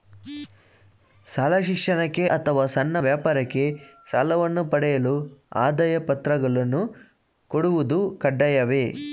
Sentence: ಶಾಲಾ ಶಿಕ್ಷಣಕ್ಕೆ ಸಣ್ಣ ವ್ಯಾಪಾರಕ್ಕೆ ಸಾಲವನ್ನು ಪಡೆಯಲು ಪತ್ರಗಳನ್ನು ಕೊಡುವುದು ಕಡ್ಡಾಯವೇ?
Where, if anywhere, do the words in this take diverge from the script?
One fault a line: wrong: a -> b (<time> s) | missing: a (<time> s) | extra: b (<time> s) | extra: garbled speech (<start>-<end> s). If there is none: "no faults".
extra: ಅಥವಾ (2.2 s)
extra: ಆದಾಯ (5.6 s)